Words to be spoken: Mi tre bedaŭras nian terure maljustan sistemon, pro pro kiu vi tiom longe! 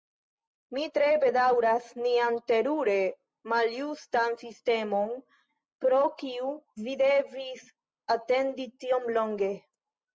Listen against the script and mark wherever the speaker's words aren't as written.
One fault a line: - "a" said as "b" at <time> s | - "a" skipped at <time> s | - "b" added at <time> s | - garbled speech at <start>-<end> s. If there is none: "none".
- "pro" skipped at 6.0 s
- "devis atendi" added at 7.1 s